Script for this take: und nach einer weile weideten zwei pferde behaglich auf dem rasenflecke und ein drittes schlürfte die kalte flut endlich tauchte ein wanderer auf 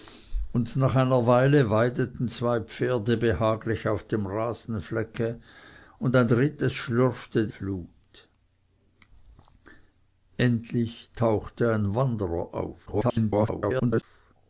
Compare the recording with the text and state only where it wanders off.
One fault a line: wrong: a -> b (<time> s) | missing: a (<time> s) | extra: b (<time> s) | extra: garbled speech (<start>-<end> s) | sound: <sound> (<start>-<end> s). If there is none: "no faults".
missing: die kalte (7.5 s)
extra: garbled speech (12.9-14.0 s)